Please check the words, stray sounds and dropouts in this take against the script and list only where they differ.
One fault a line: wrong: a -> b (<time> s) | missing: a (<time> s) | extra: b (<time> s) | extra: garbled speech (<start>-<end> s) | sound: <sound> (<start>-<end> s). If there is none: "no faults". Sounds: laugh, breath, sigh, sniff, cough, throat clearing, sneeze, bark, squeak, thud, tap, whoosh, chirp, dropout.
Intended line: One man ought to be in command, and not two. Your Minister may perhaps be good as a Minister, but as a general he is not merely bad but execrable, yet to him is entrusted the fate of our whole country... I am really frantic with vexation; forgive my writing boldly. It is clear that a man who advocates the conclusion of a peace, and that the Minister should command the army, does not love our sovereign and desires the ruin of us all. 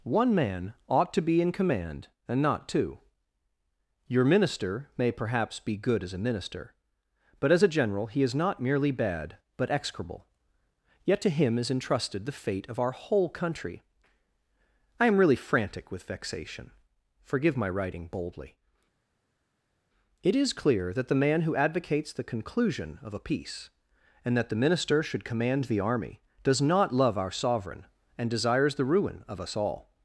wrong: a -> the (21.1 s)